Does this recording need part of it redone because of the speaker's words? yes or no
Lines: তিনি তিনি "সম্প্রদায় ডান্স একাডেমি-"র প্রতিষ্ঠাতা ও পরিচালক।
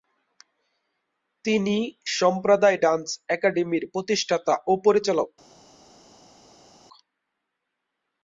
yes